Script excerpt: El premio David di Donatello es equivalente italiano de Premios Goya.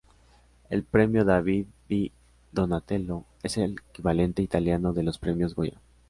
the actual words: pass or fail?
fail